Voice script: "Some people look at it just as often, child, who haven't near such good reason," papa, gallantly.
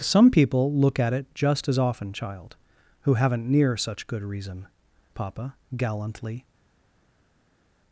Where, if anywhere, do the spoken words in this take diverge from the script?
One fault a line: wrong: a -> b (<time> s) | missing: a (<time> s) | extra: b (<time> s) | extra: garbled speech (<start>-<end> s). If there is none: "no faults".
no faults